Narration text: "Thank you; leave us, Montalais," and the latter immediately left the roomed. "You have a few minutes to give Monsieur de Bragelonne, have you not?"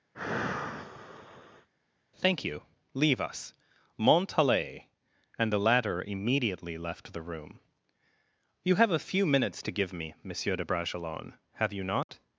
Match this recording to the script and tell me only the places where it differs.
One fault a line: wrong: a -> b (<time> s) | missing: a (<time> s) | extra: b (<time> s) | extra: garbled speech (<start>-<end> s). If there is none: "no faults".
wrong: roomed -> room (7.2 s)
extra: me (9.9 s)